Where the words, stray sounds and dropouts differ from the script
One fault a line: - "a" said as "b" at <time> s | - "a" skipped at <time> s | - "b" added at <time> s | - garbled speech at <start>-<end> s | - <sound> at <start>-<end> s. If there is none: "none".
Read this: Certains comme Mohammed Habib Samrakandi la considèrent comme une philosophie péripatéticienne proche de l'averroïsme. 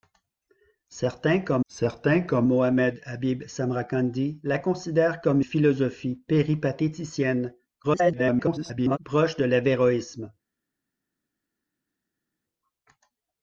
- "certains comme" added at 1.7 s
- "une" skipped at 5.4 s
- garbled speech at 7.8-9.0 s